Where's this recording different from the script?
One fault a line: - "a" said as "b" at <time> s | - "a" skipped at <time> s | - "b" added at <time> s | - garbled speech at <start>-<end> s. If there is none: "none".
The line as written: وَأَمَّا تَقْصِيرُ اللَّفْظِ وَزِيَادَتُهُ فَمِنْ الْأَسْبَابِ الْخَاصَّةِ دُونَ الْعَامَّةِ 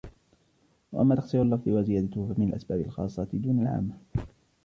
none